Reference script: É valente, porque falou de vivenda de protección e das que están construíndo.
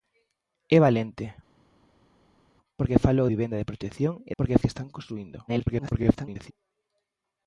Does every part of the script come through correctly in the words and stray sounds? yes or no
no